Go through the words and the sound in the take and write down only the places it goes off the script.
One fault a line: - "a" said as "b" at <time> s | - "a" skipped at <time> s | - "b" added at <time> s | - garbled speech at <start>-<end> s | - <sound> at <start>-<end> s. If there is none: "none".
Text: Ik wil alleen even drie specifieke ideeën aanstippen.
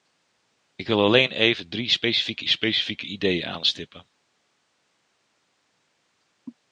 - "specifieke" added at 2.5 s